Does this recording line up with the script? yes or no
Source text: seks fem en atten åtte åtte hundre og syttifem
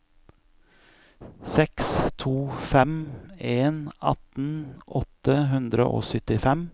no